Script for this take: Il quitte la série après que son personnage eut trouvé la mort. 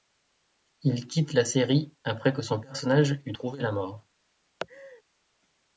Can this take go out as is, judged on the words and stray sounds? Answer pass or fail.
fail